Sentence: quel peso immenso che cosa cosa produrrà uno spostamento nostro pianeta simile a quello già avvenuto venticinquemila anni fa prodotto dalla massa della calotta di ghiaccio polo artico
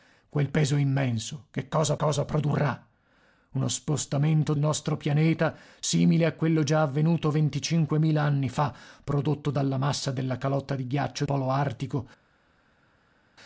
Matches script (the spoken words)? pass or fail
pass